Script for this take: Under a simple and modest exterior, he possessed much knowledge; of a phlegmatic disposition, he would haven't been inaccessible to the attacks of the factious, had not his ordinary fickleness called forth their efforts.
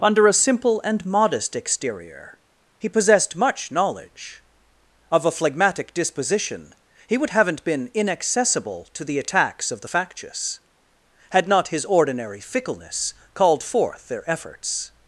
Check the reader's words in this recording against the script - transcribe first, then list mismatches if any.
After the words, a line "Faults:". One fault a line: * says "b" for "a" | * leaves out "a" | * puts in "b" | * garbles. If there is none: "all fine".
Under a simple and modest exterior, he possessed much knowledge; of a phlegmatic disposition, he would haven't been inaccessible to the attacks of the factious, had not his ordinary fickleness called forth their efforts.
Faults:
all fine